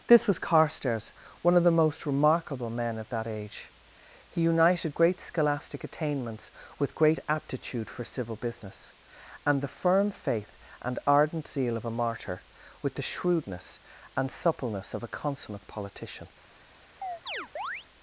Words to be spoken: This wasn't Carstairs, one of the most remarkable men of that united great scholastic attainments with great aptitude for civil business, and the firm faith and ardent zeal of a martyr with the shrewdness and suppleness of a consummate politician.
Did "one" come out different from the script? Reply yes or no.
no